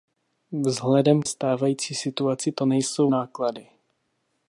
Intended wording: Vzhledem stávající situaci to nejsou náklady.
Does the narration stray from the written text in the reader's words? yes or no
no